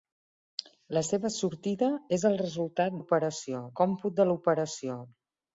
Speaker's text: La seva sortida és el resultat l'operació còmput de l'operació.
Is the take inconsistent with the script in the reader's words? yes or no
no